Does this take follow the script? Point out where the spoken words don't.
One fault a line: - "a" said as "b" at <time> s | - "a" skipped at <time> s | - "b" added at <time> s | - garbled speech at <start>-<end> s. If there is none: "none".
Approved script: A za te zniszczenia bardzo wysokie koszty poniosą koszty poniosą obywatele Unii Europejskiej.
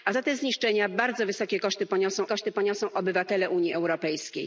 none